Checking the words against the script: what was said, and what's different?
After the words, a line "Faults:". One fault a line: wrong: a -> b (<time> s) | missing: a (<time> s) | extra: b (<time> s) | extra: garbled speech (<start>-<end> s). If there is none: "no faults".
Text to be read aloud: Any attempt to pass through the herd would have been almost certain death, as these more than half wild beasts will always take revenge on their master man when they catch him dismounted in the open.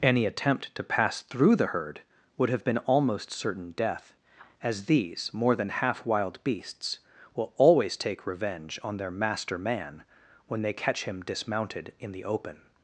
Any attempt to pass through the herd would have been almost certain death, as these more than half wild beasts will always take revenge on their master man when they catch him dismounted in the open.
Faults:
no faults